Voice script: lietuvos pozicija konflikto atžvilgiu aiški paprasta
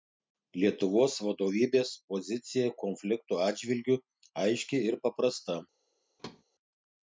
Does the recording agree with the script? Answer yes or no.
no